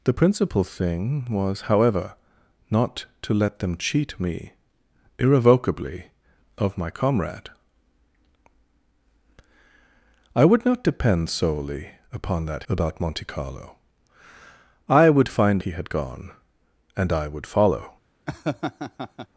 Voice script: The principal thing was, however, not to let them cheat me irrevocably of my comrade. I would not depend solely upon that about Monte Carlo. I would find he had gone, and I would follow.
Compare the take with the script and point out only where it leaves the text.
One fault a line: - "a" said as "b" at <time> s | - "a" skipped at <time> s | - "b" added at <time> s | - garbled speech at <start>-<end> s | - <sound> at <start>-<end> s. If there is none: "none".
- laugh at 18.3-19.3 s